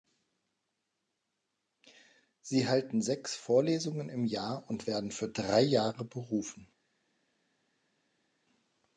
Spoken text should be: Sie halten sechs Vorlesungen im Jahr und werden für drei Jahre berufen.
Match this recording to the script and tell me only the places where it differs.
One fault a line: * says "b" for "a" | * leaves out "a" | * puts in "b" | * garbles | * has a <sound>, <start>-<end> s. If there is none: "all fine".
all fine